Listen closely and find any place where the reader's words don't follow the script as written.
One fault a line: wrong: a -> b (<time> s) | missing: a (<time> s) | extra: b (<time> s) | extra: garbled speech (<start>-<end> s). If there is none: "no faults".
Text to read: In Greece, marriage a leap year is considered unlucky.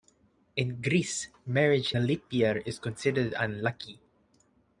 no faults